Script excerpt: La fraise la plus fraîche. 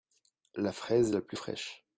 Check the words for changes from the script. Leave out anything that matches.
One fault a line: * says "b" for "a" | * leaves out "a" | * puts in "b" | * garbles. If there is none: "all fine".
all fine